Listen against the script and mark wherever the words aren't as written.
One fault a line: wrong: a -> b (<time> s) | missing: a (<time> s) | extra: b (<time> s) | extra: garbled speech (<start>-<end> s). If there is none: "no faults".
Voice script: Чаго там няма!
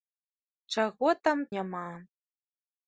no faults